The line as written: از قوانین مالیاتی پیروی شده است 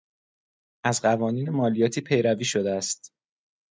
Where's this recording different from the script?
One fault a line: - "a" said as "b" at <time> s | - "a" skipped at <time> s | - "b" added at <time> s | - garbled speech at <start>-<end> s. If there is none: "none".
none